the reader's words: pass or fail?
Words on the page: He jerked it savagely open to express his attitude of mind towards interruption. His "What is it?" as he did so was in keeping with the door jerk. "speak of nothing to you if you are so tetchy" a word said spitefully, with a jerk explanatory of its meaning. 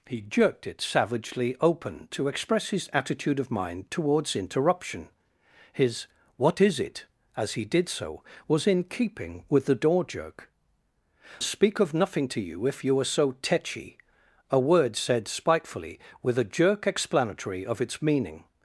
pass